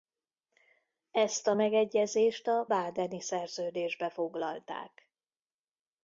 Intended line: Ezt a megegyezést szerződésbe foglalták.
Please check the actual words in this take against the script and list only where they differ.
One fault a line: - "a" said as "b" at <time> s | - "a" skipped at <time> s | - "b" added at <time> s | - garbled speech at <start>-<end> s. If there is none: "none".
- "a badeni" added at 2.5 s